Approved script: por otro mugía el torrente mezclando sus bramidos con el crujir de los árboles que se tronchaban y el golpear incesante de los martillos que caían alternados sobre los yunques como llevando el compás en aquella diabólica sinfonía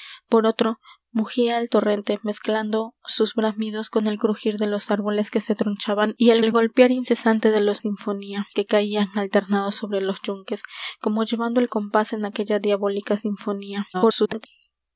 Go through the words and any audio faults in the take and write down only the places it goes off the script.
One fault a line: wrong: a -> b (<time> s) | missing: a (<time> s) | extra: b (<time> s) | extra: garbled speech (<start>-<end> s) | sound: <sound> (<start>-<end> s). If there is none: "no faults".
extra: el (6.4 s)
wrong: martillos -> sinfonía (7.8 s)
extra: garbled speech (13.9-14.5 s)